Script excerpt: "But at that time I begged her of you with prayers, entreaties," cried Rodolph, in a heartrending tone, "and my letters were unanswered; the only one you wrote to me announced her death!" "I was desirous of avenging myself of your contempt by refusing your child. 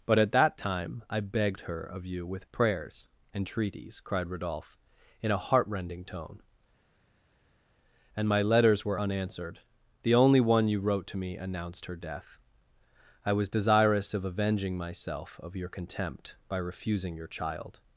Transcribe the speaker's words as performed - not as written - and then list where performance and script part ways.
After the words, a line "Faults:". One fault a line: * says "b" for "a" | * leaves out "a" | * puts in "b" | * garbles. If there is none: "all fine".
"But at that time I begged her of you with prayers, entreaties," cried Rodolph, in a heartrending tone, "and my letters were unanswered; the only one you wrote to me announced her death!" "I was desirous of avenging myself of your contempt by refusing your child.
Faults:
all fine